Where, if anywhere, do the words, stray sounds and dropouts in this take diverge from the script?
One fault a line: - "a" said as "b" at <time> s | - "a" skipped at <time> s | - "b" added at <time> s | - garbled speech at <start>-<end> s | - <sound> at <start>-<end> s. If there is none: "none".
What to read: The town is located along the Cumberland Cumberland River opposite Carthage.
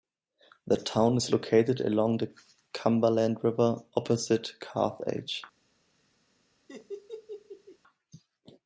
- "Cumberland" skipped at 3.4 s
- laugh at 6.7-7.8 s